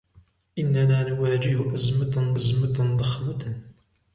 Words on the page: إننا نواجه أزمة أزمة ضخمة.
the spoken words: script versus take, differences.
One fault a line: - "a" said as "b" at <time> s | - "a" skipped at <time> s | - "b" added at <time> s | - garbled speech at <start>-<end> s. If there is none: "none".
none